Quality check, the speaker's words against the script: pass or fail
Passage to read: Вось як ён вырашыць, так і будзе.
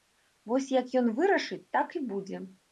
pass